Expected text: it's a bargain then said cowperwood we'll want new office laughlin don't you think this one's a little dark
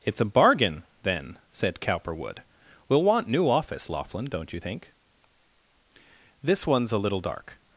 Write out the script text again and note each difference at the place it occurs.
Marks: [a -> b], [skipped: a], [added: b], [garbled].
it's a bargain then said cowperwood we'll want new office laughlin don't you think this one's a little dark